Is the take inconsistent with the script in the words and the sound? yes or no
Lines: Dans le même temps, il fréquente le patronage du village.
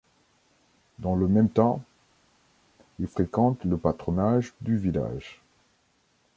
no